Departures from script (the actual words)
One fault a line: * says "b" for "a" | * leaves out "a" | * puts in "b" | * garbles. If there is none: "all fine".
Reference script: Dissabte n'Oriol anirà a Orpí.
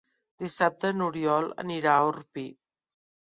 all fine